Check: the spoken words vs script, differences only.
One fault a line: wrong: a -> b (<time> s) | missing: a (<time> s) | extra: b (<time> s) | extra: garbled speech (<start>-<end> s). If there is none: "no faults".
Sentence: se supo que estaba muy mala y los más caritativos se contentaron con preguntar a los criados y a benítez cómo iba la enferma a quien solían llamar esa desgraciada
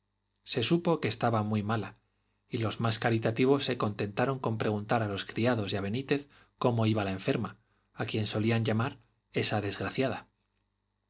no faults